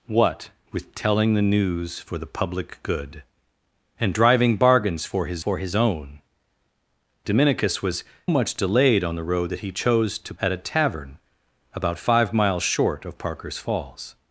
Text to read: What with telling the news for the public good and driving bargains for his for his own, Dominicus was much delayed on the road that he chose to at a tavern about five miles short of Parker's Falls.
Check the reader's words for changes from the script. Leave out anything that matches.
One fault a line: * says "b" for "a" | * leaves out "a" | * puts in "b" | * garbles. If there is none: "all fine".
all fine